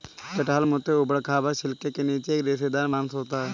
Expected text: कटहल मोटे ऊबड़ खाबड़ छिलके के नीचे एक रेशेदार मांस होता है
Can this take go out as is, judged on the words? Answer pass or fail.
pass